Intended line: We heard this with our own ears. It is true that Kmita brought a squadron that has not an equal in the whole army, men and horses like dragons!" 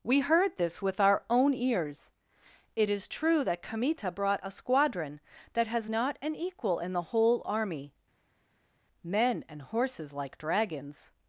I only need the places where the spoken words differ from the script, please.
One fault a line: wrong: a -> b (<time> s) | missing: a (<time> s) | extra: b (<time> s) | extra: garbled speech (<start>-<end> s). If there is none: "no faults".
no faults